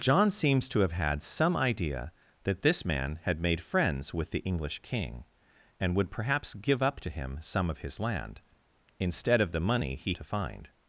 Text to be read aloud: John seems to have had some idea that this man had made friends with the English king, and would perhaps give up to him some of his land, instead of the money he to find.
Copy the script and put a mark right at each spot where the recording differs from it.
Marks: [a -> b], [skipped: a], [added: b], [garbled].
John seems to have had some idea that this man had made friends with the English king, and would perhaps give up to him some of his land, instead of the money he to find.